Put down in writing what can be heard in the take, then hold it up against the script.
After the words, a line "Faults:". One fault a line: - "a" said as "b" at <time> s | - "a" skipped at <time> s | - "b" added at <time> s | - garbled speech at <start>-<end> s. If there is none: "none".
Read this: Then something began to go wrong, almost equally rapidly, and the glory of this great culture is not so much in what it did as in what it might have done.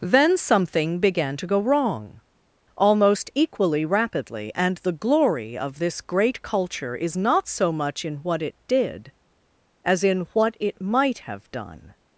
Then something began to go wrong, almost equally rapidly, and the glory of this great culture is not so much in what it did as in what it might have done.
Faults:
none